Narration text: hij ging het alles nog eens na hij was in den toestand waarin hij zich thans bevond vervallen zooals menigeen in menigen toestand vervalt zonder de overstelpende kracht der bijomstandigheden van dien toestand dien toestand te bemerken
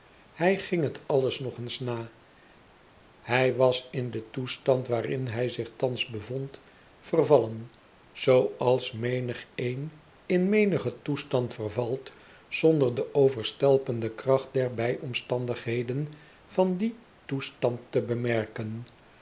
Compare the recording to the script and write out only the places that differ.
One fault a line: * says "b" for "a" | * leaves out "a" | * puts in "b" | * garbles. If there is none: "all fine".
* leaves out "dien toestand"